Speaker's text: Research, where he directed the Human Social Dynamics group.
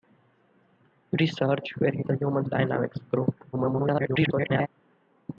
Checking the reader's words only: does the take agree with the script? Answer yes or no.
no